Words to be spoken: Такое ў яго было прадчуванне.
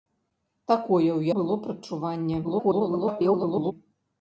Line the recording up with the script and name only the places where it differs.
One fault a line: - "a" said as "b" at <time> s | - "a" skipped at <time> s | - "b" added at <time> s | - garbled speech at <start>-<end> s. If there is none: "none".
- "яго" skipped at 1.2 s
- garbled speech at 2.4-3.7 s